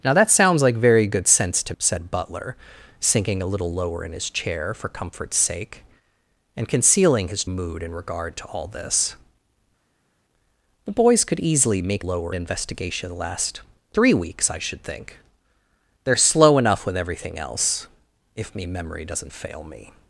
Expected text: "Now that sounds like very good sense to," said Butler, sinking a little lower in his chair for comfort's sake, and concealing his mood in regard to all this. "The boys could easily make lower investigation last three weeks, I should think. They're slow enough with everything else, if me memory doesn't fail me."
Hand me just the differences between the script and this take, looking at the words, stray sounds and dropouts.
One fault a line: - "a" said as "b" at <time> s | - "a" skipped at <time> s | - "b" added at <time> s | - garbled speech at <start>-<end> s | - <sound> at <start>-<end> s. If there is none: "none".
none